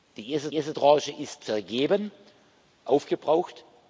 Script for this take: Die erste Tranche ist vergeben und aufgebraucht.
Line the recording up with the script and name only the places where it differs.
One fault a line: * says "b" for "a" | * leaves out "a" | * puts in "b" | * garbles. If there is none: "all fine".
* puts in "erste"
* leaves out "und"